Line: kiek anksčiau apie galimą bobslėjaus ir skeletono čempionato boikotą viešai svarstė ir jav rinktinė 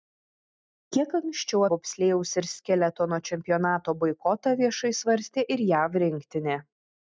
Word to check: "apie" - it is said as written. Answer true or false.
false